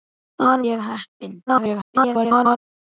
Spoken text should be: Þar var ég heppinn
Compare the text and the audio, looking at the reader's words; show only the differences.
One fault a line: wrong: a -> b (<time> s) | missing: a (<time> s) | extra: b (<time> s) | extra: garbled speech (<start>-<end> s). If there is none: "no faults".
missing: var (0.6 s)
extra: garbled speech (1.5-2.6 s)